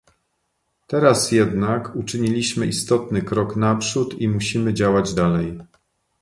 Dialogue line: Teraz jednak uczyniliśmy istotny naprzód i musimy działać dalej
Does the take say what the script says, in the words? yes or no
no